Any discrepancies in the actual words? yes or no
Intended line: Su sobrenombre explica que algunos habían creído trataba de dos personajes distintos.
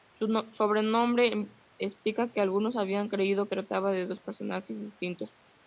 no